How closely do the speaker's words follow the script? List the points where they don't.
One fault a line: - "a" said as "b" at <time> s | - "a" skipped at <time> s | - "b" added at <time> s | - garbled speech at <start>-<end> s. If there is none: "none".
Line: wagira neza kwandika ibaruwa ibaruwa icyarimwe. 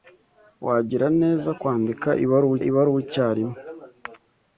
none